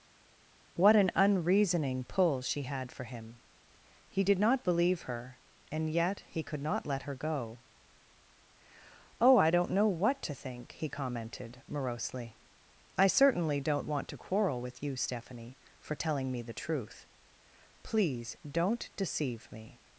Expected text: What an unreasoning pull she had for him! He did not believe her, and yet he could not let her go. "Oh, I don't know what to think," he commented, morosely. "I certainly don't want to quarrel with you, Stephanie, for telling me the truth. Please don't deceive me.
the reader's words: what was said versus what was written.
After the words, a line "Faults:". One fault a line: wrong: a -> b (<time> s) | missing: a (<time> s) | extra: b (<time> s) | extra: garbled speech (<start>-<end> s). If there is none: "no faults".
What an unreasoning pull she had for him! He did not believe her, and yet he could not let her go. "Oh, I don't know what to think," he commented, morosely. "I certainly don't want to quarrel with you, Stephanie, for telling me the truth. Please don't deceive me.
Faults:
no faults